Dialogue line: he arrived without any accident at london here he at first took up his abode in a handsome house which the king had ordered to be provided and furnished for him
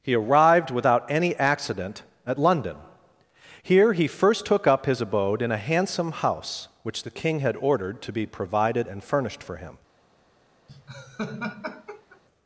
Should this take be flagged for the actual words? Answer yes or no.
yes